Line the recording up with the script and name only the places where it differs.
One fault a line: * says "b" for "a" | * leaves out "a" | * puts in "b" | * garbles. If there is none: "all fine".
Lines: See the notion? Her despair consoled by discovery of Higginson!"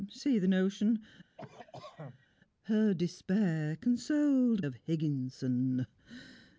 * leaves out "by discovery"